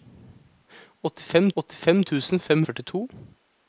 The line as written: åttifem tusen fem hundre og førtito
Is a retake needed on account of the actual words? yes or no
yes